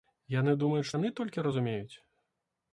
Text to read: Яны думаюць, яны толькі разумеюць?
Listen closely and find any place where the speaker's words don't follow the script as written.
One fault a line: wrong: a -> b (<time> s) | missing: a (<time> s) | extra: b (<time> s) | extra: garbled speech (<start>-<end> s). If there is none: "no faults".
no faults